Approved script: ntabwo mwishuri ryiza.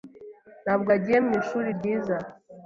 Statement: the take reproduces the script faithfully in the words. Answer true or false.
false